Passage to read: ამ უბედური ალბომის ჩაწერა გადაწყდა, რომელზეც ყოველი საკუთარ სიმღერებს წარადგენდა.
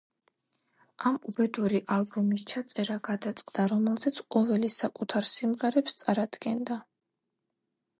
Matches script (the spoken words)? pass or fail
pass